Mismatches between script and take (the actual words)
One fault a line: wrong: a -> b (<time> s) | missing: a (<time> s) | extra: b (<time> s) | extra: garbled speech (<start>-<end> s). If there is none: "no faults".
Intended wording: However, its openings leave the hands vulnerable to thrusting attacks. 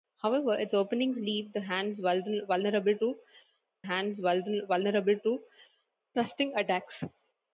extra: hands vulnerable to (3.8 s)